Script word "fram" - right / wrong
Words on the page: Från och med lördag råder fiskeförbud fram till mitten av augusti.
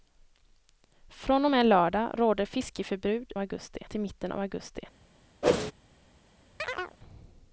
wrong